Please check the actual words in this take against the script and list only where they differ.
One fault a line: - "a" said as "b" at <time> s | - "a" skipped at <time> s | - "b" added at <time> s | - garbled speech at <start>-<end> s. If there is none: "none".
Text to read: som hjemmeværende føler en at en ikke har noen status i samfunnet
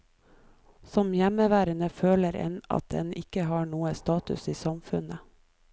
none